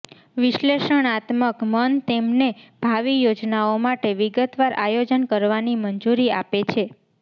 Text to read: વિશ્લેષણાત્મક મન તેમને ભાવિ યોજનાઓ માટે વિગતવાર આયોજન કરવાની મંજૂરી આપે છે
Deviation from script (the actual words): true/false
false